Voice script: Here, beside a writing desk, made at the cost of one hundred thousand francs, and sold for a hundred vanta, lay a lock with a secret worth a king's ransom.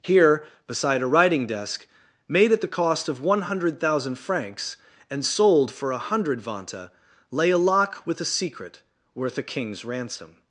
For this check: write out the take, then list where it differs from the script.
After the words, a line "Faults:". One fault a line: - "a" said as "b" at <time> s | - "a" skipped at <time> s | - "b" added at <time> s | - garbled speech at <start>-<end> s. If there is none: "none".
Here, beside a writing desk, made at the cost of one hundred thousand francs, and sold for a hundred vanta, lay a lock with a secret worth a king's ransom.
Faults:
none